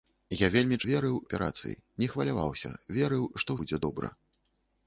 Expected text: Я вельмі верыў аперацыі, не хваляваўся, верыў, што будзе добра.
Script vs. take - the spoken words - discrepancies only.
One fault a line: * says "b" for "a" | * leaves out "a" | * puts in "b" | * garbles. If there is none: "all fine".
all fine